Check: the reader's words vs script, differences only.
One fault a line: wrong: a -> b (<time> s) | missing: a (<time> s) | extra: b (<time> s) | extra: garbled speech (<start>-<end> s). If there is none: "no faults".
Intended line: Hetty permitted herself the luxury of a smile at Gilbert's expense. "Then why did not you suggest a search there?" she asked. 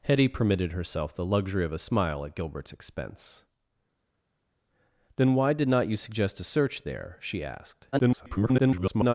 extra: garbled speech (7.9-9.1 s)